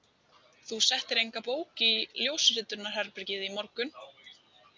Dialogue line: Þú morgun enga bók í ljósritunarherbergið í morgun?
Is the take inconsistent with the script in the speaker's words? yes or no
yes